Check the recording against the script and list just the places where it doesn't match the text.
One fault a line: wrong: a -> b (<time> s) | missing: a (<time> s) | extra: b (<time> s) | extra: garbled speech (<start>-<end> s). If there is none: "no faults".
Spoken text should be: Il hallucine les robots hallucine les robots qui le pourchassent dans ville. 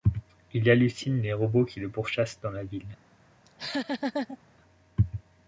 missing: hallucine les robots (1.6 s)
extra: la (2.5 s)